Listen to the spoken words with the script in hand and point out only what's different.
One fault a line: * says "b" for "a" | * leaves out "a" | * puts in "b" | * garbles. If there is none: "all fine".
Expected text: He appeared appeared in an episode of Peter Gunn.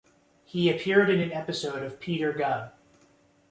* leaves out "appeared"